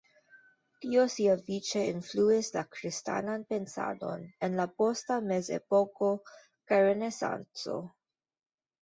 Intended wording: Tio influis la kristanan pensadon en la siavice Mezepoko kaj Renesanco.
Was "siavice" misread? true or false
true